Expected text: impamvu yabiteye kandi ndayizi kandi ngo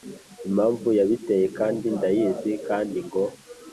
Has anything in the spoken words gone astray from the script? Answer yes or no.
no